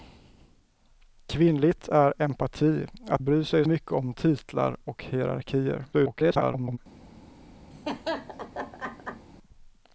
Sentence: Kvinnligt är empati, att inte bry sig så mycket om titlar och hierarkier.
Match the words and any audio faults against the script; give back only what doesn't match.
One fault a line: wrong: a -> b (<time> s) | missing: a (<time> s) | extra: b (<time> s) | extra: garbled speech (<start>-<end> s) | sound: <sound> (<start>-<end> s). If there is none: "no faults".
missing: inte (3.2 s)
missing: så (3.6 s)
extra: garbled speech (5.9-6.8 s)
sound: laugh (7.7-9.3 s)